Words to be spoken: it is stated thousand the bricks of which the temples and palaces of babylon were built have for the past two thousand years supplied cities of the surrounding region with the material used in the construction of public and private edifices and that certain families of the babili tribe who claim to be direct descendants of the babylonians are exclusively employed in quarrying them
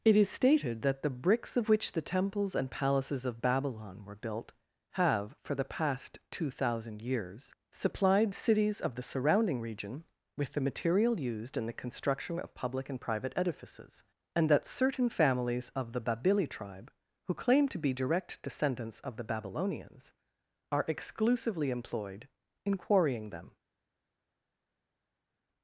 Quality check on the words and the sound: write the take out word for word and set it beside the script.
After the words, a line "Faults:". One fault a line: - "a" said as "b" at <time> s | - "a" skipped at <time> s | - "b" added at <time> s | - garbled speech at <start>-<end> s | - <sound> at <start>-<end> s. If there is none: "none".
it is stated that the bricks of which the temples and palaces of babylon were built have for the past two thousand years supplied cities of the surrounding region with the material used in the construction of public and private edifices and that certain families of the babili tribe who claim to be direct descendants of the babylonians are exclusively employed in quarrying them
Faults:
- "thousand" said as "that" at 0.8 s